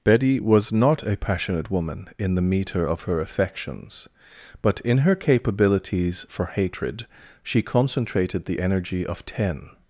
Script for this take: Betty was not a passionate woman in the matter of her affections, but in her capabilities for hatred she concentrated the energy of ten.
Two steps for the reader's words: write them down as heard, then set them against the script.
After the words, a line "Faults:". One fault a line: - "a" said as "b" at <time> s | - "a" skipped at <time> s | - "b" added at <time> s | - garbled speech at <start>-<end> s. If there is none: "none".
Betty was not a passionate woman in the meter of her affections, but in her capabilities for hatred she concentrated the energy of ten.
Faults:
- "matter" said as "meter" at 2.4 s